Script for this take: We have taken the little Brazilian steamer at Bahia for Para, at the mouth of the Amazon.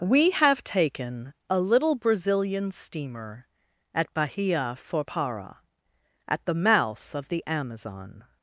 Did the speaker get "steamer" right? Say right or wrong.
right